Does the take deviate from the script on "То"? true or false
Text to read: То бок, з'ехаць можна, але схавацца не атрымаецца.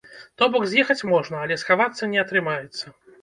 false